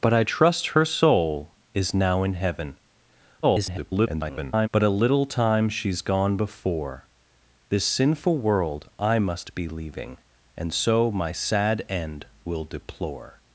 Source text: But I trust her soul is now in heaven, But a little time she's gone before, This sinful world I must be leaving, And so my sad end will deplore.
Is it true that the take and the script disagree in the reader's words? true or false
true